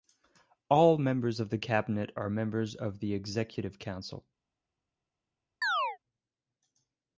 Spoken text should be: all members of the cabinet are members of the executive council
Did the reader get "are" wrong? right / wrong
right